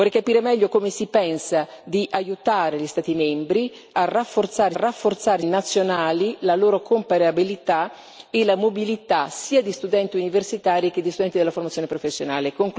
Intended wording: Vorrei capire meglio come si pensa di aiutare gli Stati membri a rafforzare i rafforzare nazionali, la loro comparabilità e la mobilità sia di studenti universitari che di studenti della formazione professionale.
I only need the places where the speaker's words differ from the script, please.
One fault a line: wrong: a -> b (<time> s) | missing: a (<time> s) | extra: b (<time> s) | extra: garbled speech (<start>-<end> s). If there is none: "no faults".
no faults